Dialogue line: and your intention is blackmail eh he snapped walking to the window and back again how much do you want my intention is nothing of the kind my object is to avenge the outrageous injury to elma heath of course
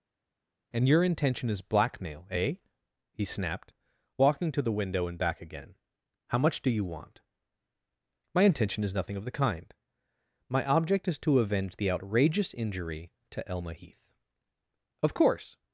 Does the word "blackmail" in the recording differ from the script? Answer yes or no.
no